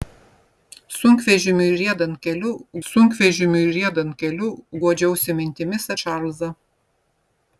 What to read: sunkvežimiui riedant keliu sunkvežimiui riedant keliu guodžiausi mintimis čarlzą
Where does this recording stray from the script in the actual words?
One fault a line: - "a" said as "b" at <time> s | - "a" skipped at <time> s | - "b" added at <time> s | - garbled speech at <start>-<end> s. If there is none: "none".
none